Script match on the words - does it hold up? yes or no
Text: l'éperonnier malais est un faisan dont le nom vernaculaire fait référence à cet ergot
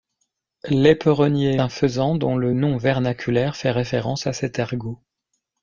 no